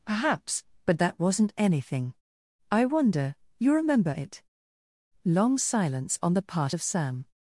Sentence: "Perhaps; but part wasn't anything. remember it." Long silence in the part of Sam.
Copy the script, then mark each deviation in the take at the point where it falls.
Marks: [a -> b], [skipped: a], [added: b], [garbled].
"Perhaps; but [part -> that] wasn't anything. [added: I wonder you] remember it." Long silence [in -> on] the part of Sam.